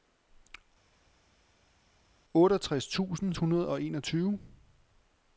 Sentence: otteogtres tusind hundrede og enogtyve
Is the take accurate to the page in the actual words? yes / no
yes